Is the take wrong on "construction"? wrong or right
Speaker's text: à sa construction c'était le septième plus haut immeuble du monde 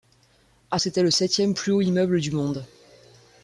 wrong